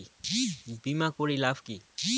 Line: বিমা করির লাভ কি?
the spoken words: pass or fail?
pass